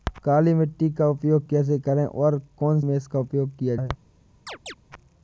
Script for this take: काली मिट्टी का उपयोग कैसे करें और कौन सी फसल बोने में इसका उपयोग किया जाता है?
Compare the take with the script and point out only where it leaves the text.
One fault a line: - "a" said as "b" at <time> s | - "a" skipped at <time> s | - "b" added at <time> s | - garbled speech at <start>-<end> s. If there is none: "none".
- "सी फसल बोने" skipped at 2.8 s
- "जाता" skipped at 3.7 s